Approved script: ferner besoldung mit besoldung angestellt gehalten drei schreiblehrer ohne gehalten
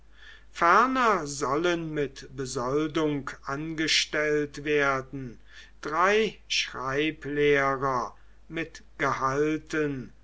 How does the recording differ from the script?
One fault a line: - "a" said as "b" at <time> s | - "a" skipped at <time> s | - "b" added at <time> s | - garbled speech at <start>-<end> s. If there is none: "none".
- "besoldung" said as "sollen" at 1.3 s
- "gehalten" said as "werden" at 4.6 s
- "ohne" said as "mit" at 8.5 s